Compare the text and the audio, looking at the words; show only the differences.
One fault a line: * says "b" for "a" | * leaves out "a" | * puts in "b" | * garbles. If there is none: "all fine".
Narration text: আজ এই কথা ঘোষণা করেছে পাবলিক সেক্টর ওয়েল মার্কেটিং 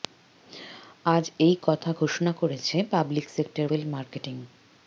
all fine